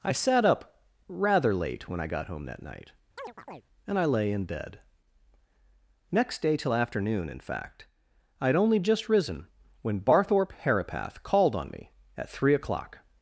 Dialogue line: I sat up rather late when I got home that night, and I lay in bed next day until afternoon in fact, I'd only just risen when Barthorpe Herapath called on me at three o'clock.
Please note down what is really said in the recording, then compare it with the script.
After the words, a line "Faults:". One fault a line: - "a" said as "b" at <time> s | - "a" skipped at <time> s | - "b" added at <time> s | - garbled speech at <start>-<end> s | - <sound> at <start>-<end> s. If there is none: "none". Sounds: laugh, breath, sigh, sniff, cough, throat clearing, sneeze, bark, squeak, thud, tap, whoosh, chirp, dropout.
I sat up rather late when I got home that night, and I lay in bed next day till afternoon in fact, I'd only just risen when Barthorpe Herapath called on me at three o'clock.
Faults:
- chirp at 3.2-3.6 s
- "until" said as "till" at 6.6 s